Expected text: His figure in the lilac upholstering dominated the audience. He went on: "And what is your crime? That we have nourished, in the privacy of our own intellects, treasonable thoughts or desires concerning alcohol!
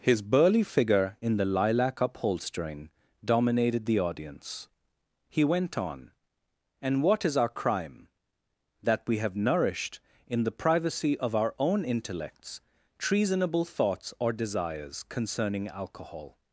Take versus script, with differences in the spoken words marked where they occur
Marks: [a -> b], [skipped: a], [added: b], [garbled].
His [added: burly] figure in the lilac upholstering dominated the audience. He went on: "And what is [your -> our] crime? That we have nourished, in the privacy of our own intellects, treasonable thoughts or desires concerning alcohol!